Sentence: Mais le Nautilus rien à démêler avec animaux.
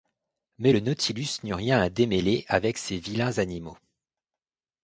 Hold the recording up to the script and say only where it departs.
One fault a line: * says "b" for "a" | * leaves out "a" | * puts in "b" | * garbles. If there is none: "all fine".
* puts in "n'eut"
* puts in "ces vilains"